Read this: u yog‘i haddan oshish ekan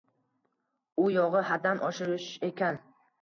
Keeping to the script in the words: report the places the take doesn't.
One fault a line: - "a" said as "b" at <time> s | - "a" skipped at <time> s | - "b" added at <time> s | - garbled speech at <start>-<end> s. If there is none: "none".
none